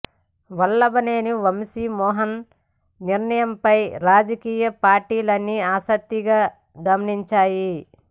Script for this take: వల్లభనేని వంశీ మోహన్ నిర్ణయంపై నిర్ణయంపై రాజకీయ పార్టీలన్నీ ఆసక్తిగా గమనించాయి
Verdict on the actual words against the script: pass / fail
fail